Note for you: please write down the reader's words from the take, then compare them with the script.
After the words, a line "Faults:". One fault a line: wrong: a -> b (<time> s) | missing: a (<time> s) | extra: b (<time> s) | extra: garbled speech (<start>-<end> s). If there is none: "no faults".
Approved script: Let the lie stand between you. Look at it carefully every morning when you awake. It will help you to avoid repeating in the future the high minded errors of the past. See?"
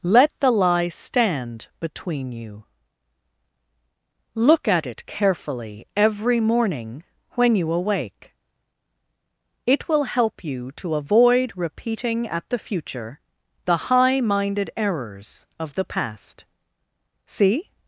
Let the lie stand between you. Look at it carefully every morning when you awake. It will help you to avoid repeating at the future the high minded errors of the past. See?"
Faults:
wrong: in -> at (12.3 s)